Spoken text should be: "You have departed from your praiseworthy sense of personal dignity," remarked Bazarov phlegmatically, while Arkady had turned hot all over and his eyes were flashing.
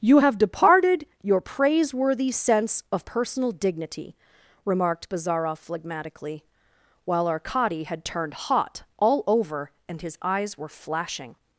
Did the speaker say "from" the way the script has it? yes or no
no